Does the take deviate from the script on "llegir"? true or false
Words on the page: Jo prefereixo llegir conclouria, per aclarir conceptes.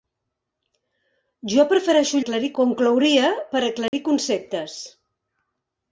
true